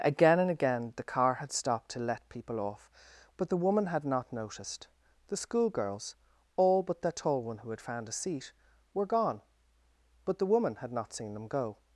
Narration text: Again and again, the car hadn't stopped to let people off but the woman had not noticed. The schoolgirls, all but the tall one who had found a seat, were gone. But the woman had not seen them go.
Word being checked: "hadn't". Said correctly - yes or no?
no